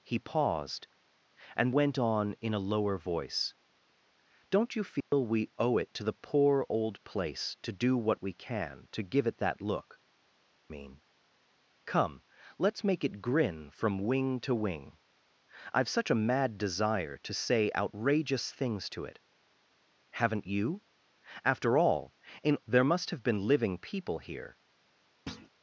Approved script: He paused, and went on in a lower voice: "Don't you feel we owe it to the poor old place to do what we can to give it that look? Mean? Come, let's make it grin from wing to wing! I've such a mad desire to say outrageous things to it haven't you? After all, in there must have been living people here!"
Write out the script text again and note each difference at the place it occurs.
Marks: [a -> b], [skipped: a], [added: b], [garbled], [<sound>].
He paused, and went on in a lower voice: "Don't you feel [dropout] we owe it to the poor old place to do what we can to give it that look? Mean? Come, let's make it grin from wing to wing! I've such a mad desire to say outrageous things to it haven't you? After all, in there must have been living people here!" [thud]